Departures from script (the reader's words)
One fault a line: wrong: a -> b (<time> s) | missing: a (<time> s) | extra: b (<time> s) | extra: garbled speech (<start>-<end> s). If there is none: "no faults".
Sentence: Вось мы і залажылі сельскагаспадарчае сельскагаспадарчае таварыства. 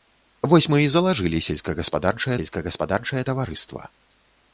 no faults